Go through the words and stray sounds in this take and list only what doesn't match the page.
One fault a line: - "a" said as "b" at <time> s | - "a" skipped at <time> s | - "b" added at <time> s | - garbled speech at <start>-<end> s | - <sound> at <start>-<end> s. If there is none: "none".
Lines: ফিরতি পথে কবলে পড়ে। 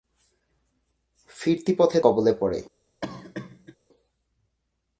- cough at 3.0-3.8 s